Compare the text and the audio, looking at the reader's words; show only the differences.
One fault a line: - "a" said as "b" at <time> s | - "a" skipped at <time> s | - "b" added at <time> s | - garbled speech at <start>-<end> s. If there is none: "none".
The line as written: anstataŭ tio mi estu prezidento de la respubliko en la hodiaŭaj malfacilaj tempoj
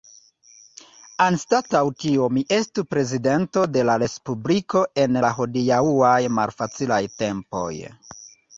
none